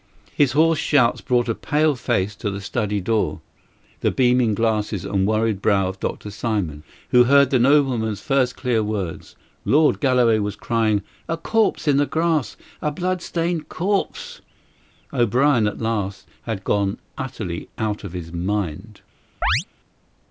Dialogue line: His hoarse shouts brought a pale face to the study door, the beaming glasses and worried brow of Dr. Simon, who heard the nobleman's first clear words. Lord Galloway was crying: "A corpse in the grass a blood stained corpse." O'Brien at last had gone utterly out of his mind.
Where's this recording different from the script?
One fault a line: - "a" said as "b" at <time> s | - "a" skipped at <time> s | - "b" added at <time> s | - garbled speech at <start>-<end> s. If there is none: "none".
none